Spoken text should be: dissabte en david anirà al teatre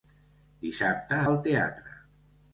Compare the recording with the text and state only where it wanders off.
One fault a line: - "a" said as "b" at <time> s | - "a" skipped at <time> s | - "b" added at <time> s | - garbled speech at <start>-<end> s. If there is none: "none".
- "en david anirà" skipped at 1.2 s